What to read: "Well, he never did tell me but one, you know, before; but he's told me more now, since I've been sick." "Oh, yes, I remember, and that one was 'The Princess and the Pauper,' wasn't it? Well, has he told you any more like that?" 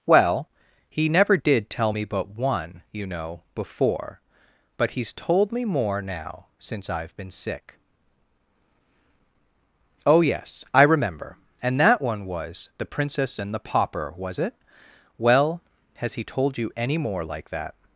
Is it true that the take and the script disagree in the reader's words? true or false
true